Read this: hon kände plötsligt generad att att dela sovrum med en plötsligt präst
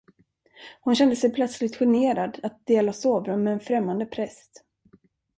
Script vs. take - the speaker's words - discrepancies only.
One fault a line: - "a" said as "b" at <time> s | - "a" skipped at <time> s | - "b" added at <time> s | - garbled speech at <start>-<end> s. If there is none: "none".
- "sig" added at 1.1 s
- "att" skipped at 2.7 s
- "plötsligt" said as "främmande" at 3.6 s